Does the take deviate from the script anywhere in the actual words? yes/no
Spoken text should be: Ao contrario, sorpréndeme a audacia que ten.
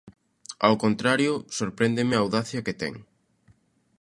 no